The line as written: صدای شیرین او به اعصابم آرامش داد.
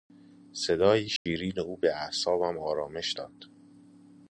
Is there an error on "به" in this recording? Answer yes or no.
no